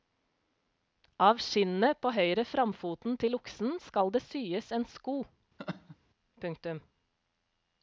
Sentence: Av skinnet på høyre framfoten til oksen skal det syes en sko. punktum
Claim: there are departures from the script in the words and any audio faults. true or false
true